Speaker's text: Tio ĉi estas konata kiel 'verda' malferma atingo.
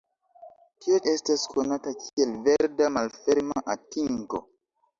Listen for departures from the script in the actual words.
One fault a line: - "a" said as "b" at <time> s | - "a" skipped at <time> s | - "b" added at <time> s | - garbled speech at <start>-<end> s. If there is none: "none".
- "ĉi" skipped at 0.9 s